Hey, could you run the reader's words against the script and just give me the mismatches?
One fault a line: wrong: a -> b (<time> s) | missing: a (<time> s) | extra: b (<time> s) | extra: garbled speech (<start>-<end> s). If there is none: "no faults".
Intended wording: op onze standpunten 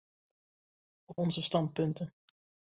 no faults